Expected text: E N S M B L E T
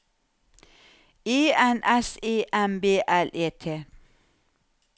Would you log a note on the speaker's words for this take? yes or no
yes